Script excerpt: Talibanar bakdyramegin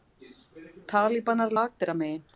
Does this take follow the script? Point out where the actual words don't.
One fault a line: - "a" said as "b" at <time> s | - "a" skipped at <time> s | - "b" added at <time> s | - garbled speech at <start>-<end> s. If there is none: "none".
none